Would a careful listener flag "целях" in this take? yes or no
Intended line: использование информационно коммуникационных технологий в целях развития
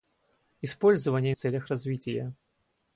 no